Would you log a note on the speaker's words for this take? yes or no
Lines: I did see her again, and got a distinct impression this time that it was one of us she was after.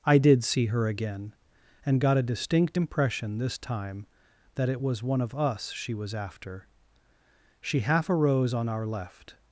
yes